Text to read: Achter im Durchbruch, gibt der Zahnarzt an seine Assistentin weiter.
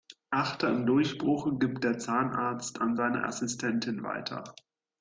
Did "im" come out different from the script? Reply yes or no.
no